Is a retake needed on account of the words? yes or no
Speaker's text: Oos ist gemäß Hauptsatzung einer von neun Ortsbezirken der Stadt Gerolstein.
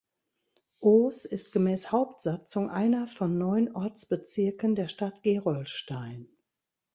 no